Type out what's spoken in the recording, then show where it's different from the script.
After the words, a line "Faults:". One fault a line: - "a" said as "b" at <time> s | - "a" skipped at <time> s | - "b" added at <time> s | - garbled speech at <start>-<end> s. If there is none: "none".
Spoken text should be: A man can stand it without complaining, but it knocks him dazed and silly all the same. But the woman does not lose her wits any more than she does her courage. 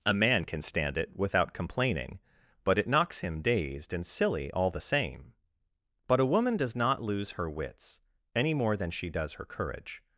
A man can stand it without complaining, but it knocks him dazed and silly all the same. But a woman does not lose her wits any more than she does her courage.
Faults:
- "the" said as "a" at 6.2 s